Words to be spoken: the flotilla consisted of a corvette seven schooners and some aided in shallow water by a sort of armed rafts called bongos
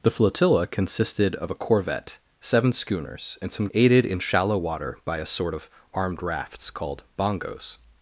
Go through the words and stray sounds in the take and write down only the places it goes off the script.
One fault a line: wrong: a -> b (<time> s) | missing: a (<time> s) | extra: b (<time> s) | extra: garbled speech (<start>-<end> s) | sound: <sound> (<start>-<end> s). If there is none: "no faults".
no faults